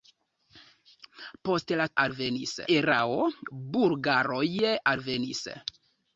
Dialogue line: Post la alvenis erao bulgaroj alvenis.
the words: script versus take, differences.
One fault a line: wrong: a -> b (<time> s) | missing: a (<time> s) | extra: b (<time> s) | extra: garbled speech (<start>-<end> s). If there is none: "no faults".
no faults